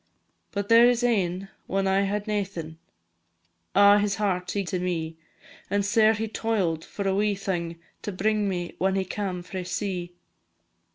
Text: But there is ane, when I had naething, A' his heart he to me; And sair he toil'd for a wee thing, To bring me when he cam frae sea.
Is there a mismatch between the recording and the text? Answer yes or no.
no